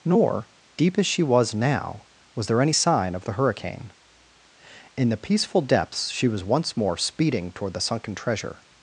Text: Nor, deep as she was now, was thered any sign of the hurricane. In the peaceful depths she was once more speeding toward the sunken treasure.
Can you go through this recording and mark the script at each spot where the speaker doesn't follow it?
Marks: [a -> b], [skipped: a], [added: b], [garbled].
Nor, deep as she was now, was [thered -> there] any sign of the hurricane. In the peaceful depths she was once more speeding toward the sunken treasure.